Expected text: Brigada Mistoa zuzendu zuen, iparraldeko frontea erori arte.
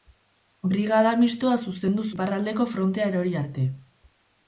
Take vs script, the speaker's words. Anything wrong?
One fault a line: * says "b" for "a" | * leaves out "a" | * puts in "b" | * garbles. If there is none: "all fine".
* leaves out "zuen"